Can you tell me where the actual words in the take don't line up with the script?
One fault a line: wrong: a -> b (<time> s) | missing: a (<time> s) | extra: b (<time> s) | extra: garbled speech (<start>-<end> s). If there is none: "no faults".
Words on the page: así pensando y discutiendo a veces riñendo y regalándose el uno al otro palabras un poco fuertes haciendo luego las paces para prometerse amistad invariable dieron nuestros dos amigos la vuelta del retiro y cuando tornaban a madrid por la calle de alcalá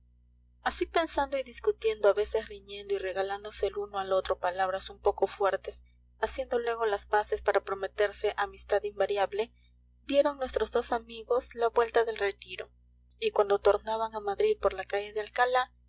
no faults